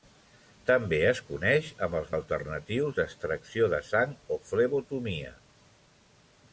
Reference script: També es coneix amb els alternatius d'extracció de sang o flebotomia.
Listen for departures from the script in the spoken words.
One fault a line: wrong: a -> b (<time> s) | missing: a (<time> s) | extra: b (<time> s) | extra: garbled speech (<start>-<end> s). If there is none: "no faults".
no faults